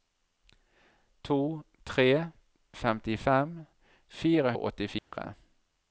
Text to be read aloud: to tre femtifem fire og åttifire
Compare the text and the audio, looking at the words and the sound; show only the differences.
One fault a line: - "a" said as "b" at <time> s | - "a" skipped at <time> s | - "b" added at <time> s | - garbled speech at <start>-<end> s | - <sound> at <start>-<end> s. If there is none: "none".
- dropout at 5.0-5.1 s